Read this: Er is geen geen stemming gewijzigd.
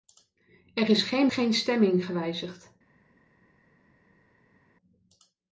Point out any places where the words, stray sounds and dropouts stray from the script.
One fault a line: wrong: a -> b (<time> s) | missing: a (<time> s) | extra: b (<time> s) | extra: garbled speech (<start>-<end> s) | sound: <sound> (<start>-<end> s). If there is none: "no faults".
no faults